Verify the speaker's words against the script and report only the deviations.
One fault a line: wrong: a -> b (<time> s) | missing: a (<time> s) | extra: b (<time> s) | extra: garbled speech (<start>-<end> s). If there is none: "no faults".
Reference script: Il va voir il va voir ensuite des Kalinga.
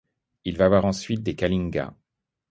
missing: il va voir (0.9 s)